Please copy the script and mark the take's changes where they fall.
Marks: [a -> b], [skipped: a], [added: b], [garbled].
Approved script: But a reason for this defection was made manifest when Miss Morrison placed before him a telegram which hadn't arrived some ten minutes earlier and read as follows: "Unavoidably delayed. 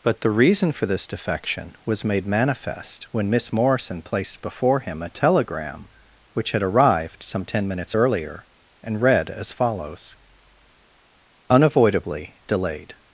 But [a -> the] reason for this defection was made manifest when Miss Morrison placed before him a telegram which [hadn't -> had] arrived some ten minutes earlier and read as follows: "Unavoidably delayed.